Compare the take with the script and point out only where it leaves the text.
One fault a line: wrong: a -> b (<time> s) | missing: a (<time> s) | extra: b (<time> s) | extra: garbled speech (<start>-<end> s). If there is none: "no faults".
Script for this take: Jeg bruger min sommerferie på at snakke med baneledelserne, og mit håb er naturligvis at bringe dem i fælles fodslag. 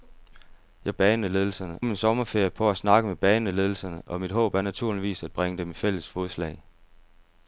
wrong: bruger -> baneledelserne (0.9 s)